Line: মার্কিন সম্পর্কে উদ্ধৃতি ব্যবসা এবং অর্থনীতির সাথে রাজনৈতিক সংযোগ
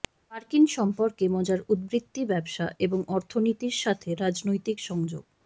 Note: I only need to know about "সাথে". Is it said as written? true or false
true